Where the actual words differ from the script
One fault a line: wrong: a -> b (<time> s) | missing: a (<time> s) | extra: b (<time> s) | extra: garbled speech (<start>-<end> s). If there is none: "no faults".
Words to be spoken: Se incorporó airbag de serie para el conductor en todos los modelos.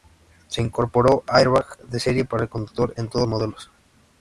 missing: los (3.3 s)